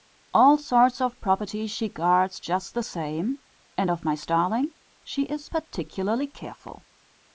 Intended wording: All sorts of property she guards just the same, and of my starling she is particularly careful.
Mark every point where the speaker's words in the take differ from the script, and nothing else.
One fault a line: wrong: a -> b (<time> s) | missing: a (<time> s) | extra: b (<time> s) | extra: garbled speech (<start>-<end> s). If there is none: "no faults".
no faults